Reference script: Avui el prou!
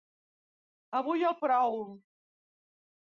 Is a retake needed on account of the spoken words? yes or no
no